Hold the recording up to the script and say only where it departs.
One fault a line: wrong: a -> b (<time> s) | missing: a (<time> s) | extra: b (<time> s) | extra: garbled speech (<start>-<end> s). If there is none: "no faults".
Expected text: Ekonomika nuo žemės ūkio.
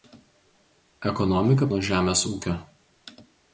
no faults